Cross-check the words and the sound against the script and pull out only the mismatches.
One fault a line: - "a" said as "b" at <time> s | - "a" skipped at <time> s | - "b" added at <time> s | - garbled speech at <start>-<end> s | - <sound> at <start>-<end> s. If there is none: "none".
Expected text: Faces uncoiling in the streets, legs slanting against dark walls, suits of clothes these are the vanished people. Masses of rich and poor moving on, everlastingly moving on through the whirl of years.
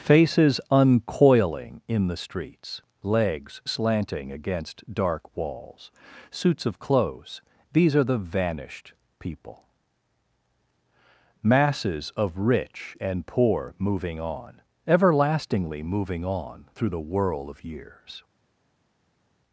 none